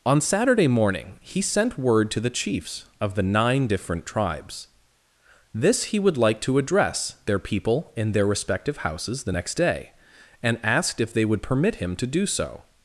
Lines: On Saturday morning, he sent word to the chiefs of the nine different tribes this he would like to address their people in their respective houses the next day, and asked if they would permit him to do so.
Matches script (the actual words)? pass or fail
pass